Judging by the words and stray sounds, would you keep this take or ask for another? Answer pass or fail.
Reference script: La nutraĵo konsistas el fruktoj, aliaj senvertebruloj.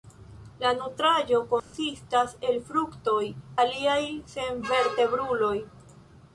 fail